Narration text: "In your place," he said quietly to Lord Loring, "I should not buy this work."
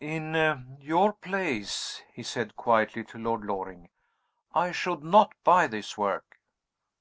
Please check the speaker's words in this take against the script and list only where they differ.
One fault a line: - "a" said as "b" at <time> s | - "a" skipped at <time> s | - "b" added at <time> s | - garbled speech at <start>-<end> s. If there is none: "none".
none